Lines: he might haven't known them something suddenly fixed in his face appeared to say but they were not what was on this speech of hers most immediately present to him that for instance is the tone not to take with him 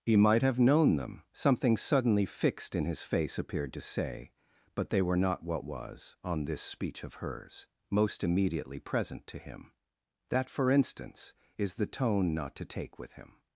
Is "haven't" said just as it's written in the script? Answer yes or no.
no